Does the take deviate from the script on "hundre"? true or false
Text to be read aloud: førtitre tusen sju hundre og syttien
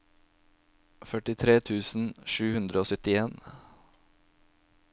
false